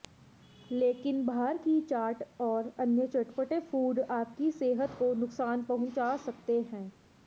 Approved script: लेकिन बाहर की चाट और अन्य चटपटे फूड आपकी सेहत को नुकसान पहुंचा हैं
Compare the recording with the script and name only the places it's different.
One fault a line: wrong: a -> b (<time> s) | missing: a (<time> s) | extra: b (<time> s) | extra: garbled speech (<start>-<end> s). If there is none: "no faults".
extra: सकते (6.2 s)